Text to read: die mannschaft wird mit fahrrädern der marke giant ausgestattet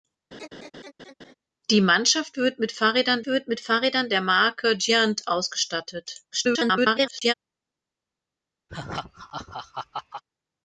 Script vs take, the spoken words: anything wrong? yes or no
yes